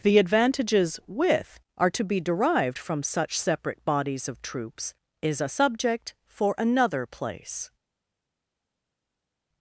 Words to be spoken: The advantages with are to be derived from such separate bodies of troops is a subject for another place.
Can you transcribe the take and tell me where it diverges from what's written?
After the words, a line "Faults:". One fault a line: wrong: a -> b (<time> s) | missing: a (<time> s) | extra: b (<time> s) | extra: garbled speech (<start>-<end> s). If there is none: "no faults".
The advantages with are to be derived from such separate bodies of troops is a subject for another place.
Faults:
no faults